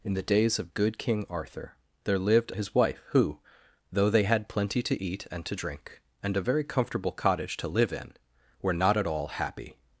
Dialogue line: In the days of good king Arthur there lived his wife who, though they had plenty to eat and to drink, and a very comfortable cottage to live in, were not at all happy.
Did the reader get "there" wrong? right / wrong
right